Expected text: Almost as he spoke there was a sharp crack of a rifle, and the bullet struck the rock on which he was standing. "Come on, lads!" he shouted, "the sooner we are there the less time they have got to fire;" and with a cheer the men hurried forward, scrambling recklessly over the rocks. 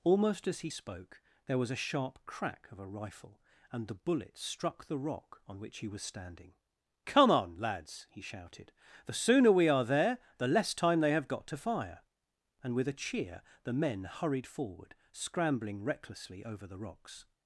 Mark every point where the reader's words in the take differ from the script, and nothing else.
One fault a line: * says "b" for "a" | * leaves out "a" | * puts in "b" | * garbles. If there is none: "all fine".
all fine